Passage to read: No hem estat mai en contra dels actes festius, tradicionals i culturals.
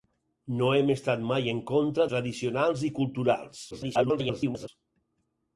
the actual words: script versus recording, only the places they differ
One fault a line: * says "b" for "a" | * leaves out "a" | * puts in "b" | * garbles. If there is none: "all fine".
* leaves out "dels actes festius"
* garbles